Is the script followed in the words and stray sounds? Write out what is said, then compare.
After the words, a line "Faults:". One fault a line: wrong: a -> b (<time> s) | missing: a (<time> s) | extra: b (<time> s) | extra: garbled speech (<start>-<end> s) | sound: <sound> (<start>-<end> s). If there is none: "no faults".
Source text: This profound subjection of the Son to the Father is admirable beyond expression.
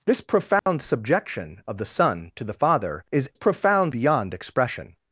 This profound subjection of the Son to the Father is profound beyond expression.
Faults:
sound: dropout (0.6-0.7 s)
wrong: admirable -> profound (3.3 s)